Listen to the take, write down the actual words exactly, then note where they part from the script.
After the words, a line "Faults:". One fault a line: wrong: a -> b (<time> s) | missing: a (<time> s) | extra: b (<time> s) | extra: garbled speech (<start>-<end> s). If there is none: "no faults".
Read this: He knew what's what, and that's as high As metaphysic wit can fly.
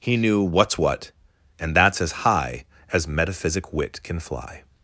He knew what's what, and that's as high As metaphysic wit can fly.
Faults:
no faults